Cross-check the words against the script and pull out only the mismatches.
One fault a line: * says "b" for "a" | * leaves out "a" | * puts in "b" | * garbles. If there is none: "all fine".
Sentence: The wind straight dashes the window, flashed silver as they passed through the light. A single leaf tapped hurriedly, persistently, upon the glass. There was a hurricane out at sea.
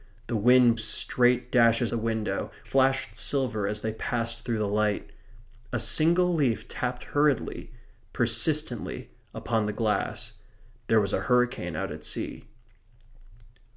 all fine